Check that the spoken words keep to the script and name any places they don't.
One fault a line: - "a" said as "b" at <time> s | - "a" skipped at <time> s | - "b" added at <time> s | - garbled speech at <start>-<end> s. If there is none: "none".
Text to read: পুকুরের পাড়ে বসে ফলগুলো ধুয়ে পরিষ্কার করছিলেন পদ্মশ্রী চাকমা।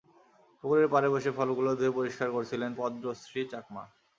none